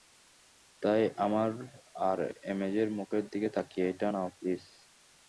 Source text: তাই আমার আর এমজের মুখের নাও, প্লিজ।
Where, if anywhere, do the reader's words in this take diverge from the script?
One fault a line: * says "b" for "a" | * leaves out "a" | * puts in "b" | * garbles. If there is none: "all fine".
* puts in "দিকে তাকিয়ে এটা"